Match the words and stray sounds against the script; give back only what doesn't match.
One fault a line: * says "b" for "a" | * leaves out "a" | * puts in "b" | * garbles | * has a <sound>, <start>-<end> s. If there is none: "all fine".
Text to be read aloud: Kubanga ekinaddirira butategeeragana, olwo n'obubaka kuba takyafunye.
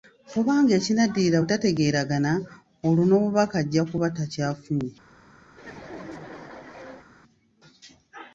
* puts in "ajja"
* has a laugh, 5.5-7.1 s